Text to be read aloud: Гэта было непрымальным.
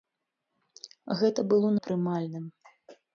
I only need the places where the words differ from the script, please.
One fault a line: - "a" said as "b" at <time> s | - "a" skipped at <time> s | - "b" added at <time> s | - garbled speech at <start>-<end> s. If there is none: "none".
none